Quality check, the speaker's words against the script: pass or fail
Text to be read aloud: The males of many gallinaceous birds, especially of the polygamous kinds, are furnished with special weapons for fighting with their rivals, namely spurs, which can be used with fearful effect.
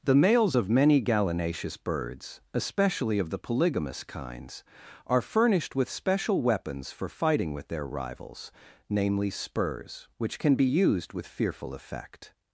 pass